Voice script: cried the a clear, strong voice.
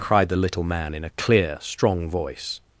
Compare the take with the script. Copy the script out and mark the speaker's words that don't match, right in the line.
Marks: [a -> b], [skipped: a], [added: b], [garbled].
cried the [added: little man in] a clear, strong voice.